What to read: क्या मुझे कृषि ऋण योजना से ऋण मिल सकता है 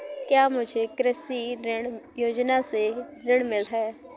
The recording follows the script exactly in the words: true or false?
false